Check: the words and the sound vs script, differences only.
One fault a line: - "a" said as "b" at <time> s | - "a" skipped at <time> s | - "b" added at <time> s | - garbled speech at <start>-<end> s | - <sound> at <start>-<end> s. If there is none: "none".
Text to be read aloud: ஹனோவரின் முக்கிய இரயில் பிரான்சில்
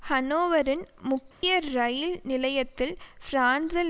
- dropout at 1.3-1.4 s
- "நிலையத்தில்" added at 2.2 s